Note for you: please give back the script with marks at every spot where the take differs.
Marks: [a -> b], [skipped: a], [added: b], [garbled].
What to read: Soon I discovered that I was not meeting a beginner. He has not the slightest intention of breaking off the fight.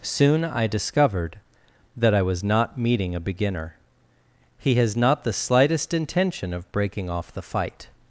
Soon I discovered that I was not meeting a beginner. He has not the slightest intention of breaking off the fight.